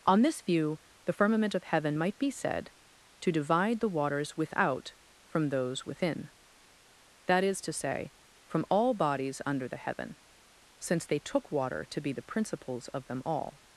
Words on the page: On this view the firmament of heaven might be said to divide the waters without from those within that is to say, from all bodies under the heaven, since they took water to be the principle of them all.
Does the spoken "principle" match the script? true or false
false